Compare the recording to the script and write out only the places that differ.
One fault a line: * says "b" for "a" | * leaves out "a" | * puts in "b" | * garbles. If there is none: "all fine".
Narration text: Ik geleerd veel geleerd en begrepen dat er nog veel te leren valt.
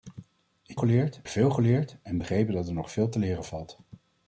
all fine